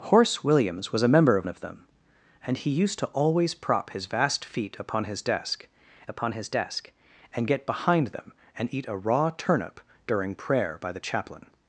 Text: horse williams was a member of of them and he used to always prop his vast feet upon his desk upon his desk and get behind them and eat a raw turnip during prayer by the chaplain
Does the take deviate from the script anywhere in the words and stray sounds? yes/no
no